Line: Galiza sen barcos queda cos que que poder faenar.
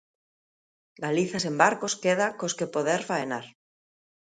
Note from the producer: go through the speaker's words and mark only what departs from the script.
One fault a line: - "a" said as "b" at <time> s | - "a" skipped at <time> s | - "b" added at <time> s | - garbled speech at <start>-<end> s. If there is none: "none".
- "que" skipped at 2.7 s